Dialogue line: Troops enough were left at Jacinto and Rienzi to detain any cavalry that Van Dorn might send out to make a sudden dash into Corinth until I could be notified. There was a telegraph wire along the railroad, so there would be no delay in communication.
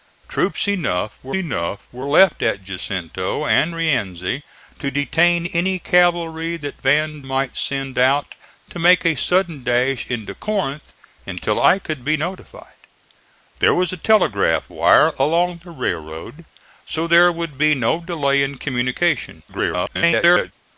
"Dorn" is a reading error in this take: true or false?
true